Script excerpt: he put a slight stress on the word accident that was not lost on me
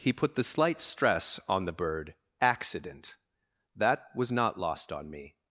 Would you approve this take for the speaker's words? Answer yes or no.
no